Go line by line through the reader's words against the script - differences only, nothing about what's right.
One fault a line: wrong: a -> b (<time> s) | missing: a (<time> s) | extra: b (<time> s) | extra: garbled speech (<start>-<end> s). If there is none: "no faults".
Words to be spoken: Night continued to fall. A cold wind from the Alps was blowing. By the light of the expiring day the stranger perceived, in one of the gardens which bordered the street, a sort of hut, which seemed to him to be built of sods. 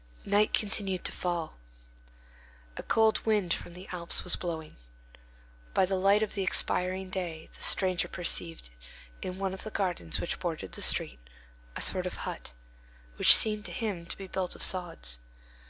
no faults